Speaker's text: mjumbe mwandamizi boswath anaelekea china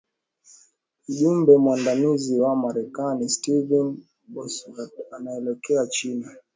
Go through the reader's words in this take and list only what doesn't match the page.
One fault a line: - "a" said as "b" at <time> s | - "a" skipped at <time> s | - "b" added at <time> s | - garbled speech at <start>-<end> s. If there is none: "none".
- "wa marekani stephen" added at 2.4 s